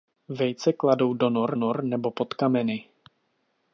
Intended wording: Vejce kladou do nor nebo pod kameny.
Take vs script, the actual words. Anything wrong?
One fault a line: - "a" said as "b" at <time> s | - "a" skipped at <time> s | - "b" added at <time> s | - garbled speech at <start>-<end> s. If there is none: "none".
- "nor" added at 1.6 s